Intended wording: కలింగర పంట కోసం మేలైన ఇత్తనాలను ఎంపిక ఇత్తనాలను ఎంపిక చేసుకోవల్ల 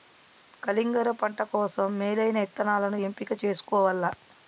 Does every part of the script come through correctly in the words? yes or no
no